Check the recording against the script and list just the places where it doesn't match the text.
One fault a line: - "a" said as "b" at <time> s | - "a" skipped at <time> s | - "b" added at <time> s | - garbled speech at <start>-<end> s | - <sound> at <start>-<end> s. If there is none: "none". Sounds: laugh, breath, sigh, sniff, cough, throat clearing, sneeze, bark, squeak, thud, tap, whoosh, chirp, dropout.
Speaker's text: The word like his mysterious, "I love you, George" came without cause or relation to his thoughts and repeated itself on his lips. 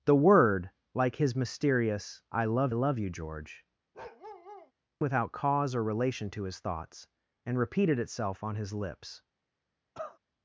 - "love" added at 2.7 s
- "came" skipped at 3.6 s
- bark at 3.9-4.7 s
- cough at 9.9-10.2 s